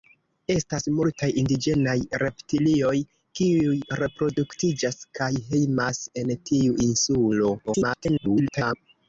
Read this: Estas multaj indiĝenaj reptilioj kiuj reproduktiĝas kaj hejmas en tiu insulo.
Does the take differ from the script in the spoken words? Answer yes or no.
yes